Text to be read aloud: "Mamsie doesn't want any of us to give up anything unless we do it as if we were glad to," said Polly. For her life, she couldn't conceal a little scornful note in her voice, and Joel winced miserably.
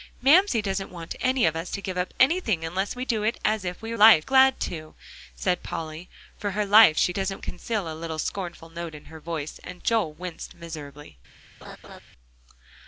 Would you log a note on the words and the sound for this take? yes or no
yes